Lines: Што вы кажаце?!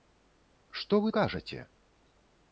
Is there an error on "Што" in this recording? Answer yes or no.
no